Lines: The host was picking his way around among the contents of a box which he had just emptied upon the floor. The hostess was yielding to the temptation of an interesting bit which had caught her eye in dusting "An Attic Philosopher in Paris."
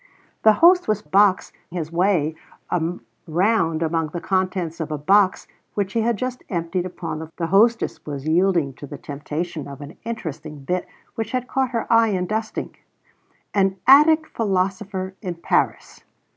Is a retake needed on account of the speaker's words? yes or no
yes